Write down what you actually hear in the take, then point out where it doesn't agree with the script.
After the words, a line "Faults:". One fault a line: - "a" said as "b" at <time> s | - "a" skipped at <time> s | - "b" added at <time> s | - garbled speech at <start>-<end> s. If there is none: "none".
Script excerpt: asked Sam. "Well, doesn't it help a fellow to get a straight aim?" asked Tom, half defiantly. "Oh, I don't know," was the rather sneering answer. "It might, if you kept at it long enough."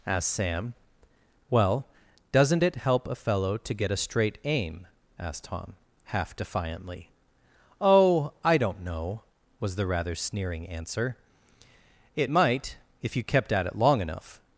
asked Sam. "Well, doesn't it help a fellow to get a straight aim?" asked Tom, half defiantly. "Oh, I don't know," was the rather sneering answer. "It might, if you kept at it long enough."
Faults:
none